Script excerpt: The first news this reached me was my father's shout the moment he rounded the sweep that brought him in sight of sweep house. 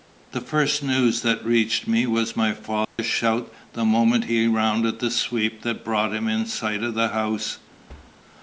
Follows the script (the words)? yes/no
no